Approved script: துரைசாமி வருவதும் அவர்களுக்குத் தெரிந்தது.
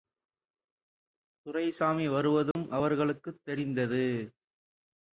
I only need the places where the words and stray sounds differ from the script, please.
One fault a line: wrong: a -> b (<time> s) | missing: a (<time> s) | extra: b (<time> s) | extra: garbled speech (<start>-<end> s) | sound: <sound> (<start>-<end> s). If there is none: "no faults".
sound: dropout (2.5-2.6 s)